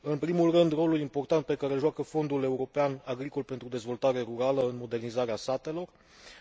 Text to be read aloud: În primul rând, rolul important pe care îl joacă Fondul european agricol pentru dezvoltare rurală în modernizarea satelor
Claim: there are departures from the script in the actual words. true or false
false